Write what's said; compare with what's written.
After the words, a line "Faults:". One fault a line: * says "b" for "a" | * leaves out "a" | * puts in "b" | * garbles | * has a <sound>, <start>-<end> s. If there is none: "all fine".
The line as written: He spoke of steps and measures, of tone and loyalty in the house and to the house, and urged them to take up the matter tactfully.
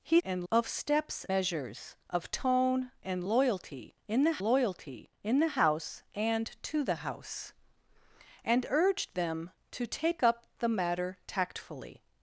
He and of steps measures, of tone and loyalty in the loyalty in the house and to the house, and urged them to take up the matter tactfully.
Faults:
* says "and" for "spoke"
* leaves out "and"
* puts in "loyalty in the"